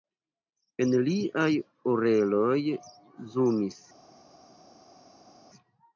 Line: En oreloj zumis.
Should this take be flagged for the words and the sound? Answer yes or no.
yes